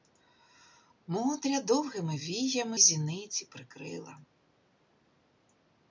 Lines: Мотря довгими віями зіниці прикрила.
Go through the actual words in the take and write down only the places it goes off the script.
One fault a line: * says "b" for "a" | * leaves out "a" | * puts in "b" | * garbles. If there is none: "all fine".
all fine